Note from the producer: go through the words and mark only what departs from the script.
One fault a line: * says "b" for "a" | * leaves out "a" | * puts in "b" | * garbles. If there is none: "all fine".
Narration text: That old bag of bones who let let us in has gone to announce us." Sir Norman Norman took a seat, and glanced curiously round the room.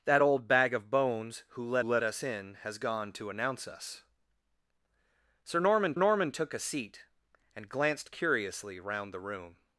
all fine